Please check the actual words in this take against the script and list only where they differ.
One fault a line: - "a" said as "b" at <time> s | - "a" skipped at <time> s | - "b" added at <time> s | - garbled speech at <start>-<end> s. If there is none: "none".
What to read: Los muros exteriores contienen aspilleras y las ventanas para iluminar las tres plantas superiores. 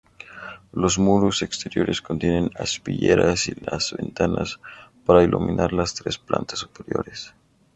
none